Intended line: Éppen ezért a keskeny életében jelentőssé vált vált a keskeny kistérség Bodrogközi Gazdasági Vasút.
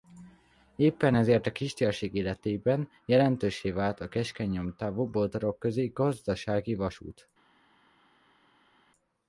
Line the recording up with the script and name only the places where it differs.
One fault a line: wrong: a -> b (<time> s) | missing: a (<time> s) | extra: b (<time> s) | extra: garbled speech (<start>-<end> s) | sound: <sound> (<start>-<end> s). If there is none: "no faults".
wrong: keskeny -> kistérség (1.5 s)
missing: vált (4.0 s)
wrong: kistérség -> nyomtávú (4.5 s)